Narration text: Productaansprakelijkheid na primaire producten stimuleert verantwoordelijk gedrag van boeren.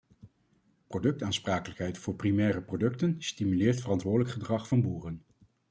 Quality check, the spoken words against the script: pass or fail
fail